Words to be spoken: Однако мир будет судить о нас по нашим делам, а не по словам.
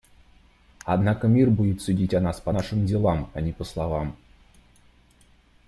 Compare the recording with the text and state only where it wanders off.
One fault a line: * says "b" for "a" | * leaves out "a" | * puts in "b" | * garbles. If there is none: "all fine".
all fine